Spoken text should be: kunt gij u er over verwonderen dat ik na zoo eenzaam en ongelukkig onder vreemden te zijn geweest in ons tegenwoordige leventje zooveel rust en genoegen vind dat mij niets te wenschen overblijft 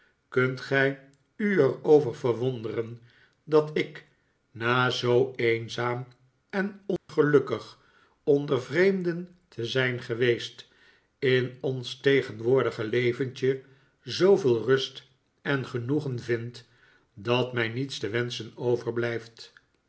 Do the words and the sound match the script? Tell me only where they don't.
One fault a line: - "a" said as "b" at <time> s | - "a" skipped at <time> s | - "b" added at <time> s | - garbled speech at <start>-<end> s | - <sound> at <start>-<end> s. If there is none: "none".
- dropout at 7.0-7.1 s